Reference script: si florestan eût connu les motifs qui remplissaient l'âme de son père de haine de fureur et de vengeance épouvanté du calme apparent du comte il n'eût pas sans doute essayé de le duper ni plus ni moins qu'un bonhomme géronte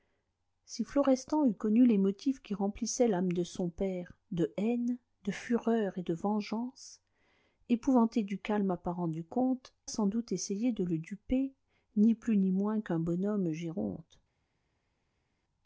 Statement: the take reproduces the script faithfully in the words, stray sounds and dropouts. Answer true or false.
false